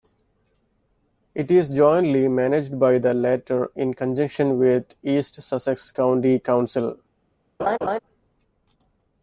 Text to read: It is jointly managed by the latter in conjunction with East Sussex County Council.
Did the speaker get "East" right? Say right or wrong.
right